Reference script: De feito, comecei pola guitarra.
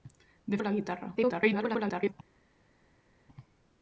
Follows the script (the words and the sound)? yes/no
no